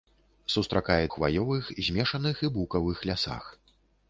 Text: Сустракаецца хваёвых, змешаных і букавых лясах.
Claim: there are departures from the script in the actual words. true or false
false